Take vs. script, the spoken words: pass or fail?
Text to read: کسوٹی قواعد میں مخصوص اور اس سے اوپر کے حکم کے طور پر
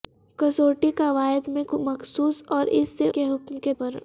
fail